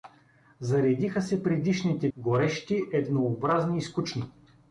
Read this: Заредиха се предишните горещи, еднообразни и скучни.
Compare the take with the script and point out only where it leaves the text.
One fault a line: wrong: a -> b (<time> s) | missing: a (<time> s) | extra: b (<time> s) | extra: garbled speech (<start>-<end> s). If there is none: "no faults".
no faults